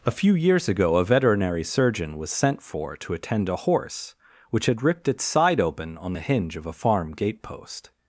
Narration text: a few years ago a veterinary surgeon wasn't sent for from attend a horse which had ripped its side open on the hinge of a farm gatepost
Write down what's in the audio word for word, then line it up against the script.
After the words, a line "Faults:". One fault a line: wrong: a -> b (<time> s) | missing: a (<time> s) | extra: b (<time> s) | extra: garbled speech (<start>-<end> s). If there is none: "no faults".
a few years ago a veterinary surgeon was sent for to attend a horse which had ripped its side open on the hinge of a farm gatepost
Faults:
wrong: wasn't -> was (2.2 s)
wrong: from -> to (3.0 s)